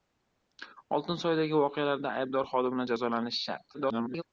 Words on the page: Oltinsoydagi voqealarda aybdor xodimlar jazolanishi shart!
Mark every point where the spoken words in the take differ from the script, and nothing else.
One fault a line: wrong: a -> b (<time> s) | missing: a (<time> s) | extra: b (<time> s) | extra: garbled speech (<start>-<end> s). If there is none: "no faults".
extra: garbled speech (3.7-4.2 s)